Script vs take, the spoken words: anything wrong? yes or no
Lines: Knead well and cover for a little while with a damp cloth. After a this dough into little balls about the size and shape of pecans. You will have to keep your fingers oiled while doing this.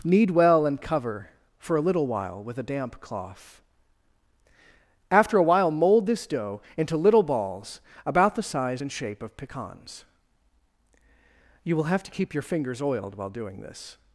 yes